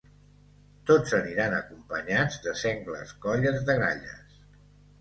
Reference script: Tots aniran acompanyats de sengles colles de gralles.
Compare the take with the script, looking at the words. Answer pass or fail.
pass